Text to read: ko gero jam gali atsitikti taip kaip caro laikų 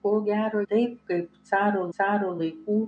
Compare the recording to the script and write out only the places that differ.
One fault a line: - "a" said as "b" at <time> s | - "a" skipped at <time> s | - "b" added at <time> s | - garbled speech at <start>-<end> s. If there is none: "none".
- "jam gali atsitikti" skipped at 0.6 s
- "caro" added at 2.0 s